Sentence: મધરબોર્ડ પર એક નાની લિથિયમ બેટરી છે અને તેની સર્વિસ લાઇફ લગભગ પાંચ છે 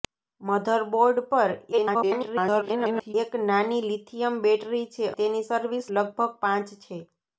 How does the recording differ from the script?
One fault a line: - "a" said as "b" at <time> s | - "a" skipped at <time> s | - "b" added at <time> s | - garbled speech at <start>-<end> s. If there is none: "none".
- garbled speech at 1.7-3.1 s
- "અને" skipped at 5.1 s
- "લાઇફ" skipped at 5.9 s